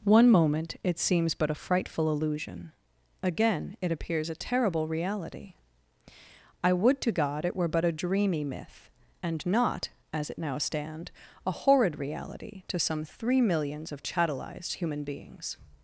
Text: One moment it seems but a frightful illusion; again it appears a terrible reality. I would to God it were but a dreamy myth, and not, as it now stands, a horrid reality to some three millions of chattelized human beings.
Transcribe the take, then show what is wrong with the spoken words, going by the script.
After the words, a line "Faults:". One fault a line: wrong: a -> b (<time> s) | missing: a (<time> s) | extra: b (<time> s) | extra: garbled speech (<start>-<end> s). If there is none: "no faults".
One moment it seems but a frightful illusion; again it appears a terrible reality. I would to God it were but a dreamy myth, and not, as it now stand, a horrid reality to some three millions of chattelized human beings.
Faults:
wrong: stands -> stand (10.6 s)